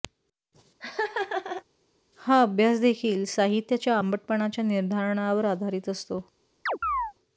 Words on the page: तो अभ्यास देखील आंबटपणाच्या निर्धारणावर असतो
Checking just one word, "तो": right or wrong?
wrong